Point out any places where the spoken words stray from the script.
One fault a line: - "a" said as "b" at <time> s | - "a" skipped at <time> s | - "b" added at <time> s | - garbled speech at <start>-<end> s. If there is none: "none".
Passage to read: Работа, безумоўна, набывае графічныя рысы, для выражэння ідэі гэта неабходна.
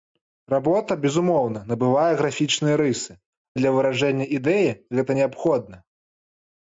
none